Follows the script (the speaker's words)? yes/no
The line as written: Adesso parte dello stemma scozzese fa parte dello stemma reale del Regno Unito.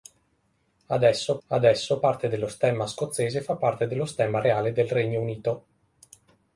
no